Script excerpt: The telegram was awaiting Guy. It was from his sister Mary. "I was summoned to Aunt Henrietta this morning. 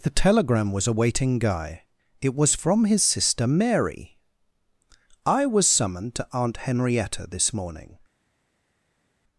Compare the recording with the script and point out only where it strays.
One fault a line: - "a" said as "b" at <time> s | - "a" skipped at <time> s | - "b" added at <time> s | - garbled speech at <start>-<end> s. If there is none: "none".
none